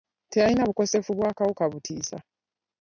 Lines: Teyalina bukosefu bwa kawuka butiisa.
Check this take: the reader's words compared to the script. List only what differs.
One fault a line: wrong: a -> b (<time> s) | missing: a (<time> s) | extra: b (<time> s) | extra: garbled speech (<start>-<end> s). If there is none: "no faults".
no faults